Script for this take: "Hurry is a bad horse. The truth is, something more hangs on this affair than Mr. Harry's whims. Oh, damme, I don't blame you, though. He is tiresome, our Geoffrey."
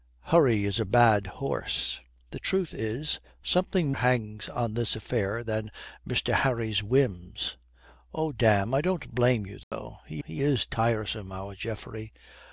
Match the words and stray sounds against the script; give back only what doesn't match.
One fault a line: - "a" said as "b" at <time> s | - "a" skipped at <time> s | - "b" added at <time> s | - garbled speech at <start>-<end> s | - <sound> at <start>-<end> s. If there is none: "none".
- "more" skipped at 3.9 s
- dropout at 9.6-9.7 s
- "he" added at 10.2 s